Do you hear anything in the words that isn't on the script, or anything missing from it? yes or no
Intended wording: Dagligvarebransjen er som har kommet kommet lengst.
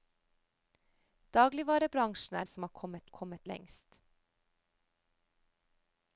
no